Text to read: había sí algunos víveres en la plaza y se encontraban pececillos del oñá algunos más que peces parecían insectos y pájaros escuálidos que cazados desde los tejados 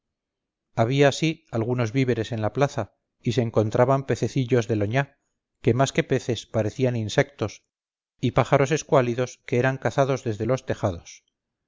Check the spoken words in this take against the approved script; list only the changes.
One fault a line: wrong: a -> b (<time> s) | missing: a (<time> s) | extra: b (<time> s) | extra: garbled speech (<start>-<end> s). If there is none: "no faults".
wrong: algunos -> que (5.6 s)
extra: eran (9.6 s)